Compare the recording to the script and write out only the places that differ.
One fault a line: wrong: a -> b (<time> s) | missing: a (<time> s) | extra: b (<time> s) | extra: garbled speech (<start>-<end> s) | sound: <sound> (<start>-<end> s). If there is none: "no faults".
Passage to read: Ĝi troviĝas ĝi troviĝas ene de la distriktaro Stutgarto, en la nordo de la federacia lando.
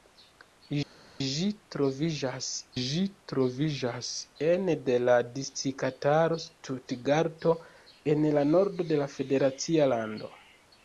no faults